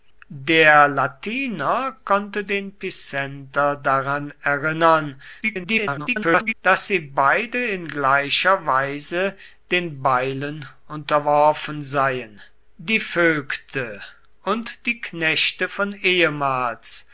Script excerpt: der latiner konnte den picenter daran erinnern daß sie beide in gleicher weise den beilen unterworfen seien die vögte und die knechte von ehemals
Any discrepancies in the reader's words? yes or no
yes